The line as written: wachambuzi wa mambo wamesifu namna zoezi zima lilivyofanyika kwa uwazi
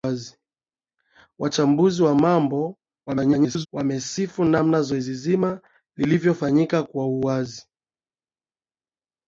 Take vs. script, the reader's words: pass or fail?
fail